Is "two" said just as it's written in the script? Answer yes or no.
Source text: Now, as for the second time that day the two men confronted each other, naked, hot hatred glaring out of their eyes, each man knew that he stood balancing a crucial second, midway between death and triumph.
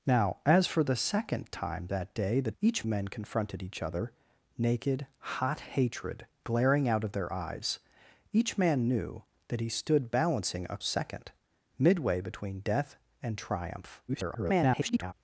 no